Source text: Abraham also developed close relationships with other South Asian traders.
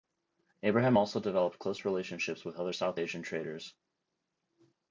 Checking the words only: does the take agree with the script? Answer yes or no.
yes